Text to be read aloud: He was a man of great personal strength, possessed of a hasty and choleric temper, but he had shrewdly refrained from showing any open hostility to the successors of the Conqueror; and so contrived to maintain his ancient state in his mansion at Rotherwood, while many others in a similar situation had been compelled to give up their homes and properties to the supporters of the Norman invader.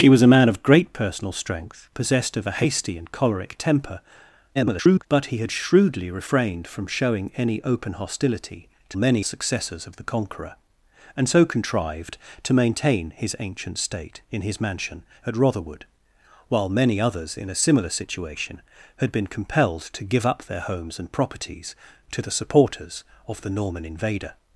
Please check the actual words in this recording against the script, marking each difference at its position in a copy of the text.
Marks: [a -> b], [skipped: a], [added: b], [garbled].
He was a man of great personal strength, possessed of a hasty and choleric temper, [garbled] but he had shrewdly refrained from showing any open hostility to [the -> many] successors of the Conqueror; and so contrived to maintain his ancient state in his mansion at Rotherwood, while many others in a similar situation had been compelled to give up their homes and properties to the supporters of the Norman invader.